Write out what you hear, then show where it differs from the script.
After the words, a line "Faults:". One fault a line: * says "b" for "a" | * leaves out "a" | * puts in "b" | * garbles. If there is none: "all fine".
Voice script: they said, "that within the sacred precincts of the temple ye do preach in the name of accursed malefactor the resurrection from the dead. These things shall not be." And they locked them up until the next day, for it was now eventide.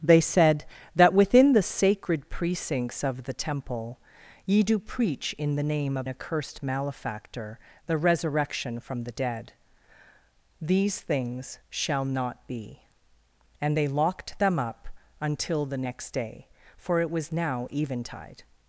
they said, "that within the sacred precincts of the temple ye do preach in the name of accursed malefactor the resurrection from the dead. These things shall not be." And they locked them up until the next day, for it was now eventide.
Faults:
all fine